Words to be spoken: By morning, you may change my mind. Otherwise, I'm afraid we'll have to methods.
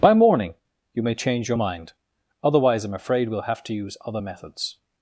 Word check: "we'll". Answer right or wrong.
right